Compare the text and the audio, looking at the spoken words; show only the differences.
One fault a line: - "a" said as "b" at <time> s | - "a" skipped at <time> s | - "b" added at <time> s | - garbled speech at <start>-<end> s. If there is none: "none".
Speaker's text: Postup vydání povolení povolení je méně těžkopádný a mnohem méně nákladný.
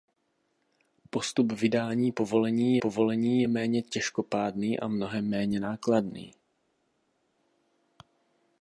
none